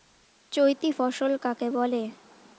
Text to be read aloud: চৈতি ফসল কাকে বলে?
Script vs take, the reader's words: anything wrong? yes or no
no